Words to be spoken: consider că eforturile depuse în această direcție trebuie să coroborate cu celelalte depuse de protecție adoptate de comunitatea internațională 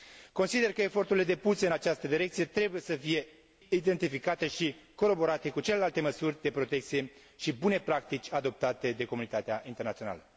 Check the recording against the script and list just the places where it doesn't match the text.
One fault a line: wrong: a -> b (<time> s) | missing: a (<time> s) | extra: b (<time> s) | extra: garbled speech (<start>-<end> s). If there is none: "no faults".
extra: fie identificate și (2.9 s)
wrong: depuse -> măsuri (6.0 s)
extra: și bune practici (7.3 s)